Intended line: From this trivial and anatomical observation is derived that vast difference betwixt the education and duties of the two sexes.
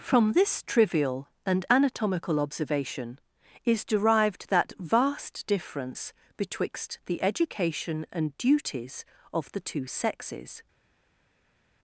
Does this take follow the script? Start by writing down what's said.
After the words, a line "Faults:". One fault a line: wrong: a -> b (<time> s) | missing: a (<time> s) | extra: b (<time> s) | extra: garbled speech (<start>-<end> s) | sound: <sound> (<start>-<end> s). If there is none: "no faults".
From this trivial and anatomical observation is derived that vast difference betwixt the education and duties of the two sexes.
Faults:
no faults